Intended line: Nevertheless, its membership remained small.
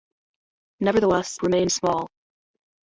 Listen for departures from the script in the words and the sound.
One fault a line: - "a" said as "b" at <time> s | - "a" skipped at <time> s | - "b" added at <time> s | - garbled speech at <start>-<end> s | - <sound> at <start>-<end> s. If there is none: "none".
- "its membership" skipped at 1.4 s